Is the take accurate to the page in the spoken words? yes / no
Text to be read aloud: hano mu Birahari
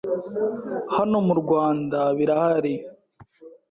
no